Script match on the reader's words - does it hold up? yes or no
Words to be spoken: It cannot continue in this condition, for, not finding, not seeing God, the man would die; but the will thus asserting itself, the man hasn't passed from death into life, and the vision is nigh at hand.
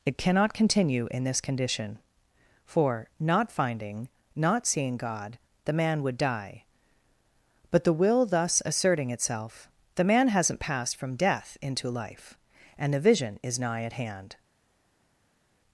yes